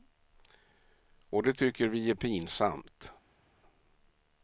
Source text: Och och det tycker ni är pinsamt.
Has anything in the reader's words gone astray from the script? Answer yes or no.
yes